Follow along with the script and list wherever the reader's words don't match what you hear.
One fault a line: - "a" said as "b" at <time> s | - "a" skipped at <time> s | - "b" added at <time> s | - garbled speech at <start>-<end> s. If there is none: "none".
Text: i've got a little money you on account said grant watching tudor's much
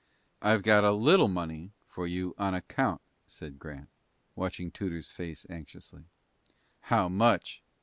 - "for" added at 1.9 s
- "face anxiously how" added at 5.1 s